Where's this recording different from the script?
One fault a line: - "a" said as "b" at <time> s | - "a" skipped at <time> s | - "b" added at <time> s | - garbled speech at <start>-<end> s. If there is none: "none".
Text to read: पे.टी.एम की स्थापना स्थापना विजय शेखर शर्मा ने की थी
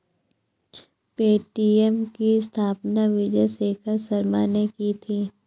- "स्थापना" skipped at 3.0 s